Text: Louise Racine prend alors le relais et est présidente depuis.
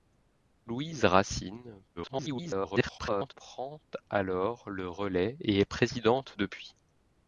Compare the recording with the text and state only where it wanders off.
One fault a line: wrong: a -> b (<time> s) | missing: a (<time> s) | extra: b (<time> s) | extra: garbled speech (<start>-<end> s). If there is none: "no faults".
extra: garbled speech (2.0-3.3 s)